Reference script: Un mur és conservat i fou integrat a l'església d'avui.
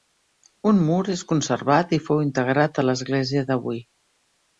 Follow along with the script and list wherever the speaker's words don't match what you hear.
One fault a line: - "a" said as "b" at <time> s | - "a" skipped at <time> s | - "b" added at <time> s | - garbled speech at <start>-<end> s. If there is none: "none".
none